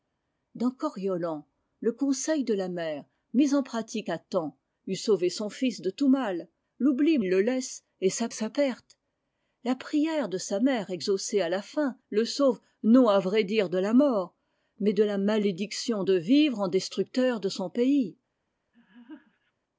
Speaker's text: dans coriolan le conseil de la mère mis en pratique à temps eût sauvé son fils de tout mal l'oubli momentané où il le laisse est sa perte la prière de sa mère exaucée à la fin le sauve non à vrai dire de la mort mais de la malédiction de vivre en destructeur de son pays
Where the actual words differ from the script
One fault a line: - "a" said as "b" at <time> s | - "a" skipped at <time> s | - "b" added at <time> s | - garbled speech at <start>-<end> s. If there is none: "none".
- "momentané où" skipped at 7.2 s
- "sa" added at 8.3 s